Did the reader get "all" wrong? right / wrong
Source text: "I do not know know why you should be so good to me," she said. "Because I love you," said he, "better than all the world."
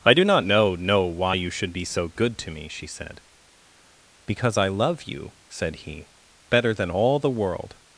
right